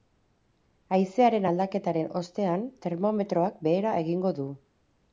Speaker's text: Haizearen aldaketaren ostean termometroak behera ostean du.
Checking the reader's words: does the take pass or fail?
fail